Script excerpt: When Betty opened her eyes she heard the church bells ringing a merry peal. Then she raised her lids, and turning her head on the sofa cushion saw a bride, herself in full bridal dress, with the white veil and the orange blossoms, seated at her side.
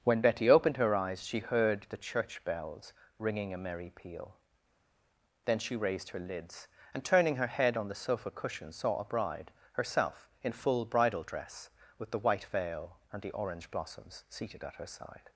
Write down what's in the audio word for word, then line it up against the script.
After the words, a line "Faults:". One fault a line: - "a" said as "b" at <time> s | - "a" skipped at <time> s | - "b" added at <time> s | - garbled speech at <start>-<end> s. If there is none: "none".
When Betty opened her eyes she heard the church bells ringing a merry peal. Then she raised her lids, and turning her head on the sofa cushion saw a bride, herself in full bridal dress, with the white veil and the orange blossoms, seated at her side.
Faults:
none